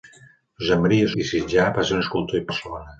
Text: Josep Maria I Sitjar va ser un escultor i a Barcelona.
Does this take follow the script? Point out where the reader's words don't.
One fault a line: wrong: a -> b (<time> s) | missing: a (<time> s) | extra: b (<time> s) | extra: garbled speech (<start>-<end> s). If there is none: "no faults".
no faults